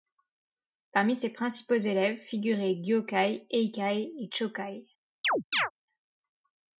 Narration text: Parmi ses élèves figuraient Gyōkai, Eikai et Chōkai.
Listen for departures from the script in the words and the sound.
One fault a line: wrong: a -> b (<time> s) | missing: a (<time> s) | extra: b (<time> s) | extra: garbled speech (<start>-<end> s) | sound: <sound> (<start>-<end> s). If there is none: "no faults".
extra: principaux (1.3 s)
sound: chirp (5.2-5.7 s)